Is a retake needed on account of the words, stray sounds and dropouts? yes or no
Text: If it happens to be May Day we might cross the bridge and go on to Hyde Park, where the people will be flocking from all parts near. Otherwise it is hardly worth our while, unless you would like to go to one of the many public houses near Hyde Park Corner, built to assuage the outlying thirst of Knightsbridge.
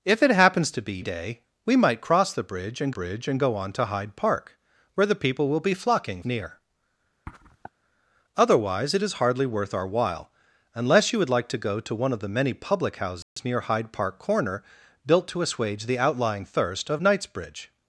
yes